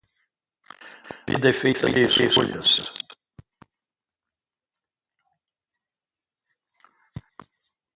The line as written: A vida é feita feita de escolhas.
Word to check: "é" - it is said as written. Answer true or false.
true